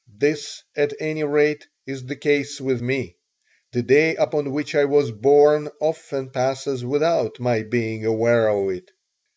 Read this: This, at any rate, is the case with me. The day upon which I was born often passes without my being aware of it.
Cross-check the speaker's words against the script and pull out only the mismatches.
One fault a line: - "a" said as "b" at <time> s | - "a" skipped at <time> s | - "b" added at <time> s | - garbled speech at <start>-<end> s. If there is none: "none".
none